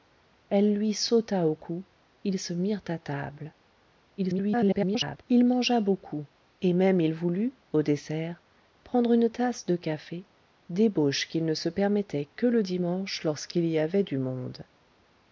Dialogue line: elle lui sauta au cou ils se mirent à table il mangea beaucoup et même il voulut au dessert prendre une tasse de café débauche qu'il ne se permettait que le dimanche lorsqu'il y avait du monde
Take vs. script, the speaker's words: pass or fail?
fail